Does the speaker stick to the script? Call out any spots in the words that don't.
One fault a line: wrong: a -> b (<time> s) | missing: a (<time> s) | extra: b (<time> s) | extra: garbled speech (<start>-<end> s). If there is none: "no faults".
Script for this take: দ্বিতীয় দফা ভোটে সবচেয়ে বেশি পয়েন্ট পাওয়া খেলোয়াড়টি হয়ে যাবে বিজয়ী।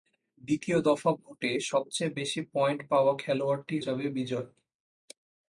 missing: হয়ে (3.8 s)